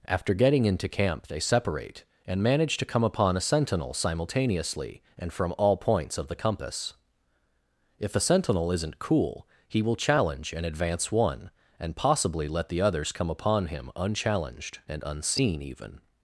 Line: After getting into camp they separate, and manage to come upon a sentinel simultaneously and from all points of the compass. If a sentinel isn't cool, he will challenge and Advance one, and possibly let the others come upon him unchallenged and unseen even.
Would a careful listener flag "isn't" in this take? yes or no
no